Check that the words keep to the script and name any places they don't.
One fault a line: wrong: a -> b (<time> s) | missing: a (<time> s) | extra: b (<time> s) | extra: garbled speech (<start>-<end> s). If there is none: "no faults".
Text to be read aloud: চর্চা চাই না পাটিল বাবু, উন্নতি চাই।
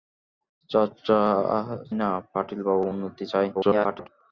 missing: চাই (1.2 s)
extra: garbled speech (3.5-4.1 s)